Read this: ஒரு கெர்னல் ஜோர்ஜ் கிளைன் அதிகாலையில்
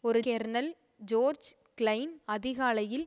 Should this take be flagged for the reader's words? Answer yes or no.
no